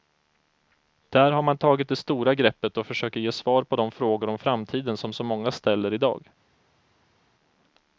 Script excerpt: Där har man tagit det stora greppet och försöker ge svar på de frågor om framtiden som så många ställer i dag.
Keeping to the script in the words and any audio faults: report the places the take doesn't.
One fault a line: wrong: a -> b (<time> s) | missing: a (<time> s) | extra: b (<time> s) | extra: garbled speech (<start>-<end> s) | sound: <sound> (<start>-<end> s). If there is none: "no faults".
no faults